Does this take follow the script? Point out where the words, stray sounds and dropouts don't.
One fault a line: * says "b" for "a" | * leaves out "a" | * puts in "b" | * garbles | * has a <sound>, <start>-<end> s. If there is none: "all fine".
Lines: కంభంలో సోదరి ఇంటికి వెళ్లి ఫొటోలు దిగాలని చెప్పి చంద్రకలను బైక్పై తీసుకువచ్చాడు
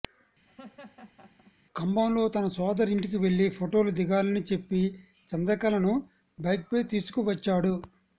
* has a laugh, 0.4-1.5 s
* puts in "తన"